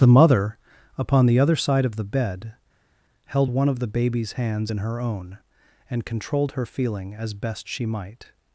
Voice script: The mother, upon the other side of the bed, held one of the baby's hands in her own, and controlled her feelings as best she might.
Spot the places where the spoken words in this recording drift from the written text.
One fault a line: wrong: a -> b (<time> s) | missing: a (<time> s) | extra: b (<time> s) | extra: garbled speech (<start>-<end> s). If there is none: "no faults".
wrong: feelings -> feeling (6.6 s)